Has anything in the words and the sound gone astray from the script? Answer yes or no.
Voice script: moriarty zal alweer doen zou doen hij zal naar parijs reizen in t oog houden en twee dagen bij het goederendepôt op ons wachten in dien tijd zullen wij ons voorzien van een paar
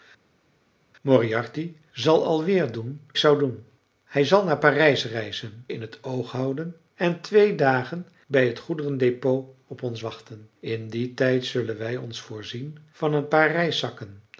no